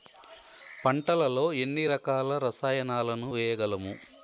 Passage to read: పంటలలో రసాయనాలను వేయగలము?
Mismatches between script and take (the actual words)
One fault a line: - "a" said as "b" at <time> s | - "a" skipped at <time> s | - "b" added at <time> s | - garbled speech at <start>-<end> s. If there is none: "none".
- "ఎన్ని రకాల" added at 1.5 s